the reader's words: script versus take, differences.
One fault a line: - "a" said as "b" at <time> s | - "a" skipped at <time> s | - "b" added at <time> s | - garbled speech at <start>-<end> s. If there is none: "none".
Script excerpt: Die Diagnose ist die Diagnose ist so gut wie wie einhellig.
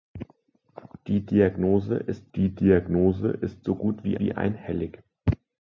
none